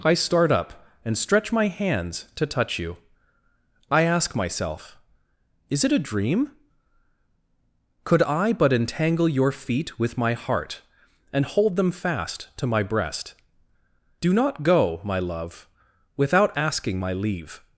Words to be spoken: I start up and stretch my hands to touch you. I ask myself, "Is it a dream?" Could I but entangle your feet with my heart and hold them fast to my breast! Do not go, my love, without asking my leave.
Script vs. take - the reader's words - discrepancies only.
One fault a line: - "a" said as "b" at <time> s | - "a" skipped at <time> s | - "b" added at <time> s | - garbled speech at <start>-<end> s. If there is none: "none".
none